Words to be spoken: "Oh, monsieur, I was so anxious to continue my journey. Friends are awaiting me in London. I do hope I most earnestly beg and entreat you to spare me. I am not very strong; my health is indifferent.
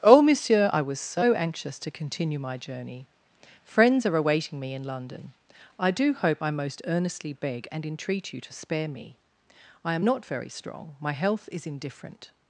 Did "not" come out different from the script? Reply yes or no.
no